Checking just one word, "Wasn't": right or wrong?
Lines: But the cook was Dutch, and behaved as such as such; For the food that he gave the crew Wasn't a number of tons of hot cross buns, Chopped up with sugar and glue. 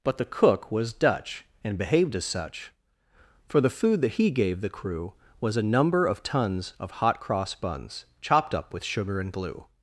wrong